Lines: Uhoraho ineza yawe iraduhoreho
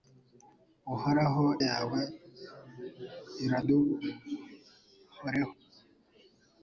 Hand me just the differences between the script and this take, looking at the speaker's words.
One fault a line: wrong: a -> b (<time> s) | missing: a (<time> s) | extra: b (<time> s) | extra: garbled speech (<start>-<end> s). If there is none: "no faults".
missing: ineza (1.4 s)